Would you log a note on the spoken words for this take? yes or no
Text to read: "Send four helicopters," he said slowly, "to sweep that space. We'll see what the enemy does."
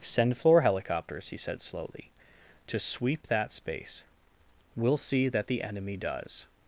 yes